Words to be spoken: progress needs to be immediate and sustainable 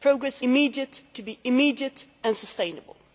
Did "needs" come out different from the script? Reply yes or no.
yes